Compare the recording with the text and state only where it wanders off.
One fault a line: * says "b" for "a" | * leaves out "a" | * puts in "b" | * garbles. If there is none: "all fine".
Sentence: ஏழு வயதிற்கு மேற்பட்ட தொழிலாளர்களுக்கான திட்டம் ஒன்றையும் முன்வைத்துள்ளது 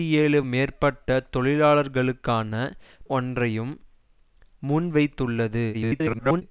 * leaves out "வயதிற்கு"
* leaves out "திட்டம்"
* garbles